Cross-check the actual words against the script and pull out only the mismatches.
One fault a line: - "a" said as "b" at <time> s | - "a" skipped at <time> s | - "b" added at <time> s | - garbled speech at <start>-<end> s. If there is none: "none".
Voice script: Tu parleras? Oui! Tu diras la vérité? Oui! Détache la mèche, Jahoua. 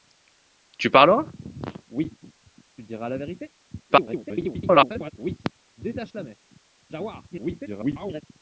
- garbled speech at 3.9-5.1 s
- garbled speech at 7.3-8.2 s